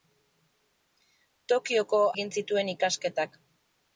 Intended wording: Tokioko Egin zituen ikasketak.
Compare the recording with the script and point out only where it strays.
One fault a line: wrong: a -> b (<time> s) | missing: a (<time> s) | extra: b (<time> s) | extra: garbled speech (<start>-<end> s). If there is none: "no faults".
no faults